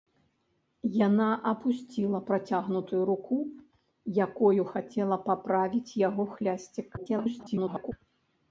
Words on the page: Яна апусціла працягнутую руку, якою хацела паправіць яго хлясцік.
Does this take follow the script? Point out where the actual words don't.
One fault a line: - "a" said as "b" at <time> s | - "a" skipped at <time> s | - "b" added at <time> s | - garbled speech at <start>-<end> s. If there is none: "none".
- garbled speech at 7.0-7.9 s